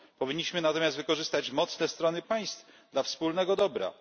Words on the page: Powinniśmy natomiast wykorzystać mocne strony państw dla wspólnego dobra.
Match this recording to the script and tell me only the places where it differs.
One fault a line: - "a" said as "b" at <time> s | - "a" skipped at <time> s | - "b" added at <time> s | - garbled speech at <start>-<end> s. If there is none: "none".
none